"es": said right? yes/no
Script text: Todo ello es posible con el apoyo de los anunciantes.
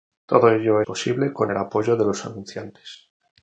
no